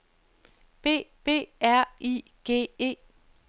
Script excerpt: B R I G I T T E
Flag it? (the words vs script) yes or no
yes